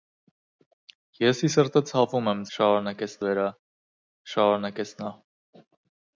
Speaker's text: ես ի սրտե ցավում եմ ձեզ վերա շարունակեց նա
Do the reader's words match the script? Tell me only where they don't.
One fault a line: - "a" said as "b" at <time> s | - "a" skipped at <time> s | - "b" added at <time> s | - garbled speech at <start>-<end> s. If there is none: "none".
- "ձեզ" said as "շարունակեց" at 2.6 s